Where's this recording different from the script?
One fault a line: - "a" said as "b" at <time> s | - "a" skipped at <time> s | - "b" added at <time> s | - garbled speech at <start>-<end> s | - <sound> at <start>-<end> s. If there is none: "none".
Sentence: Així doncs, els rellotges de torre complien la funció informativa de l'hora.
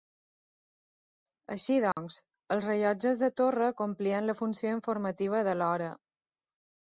- dropout at 1.9-2.0 s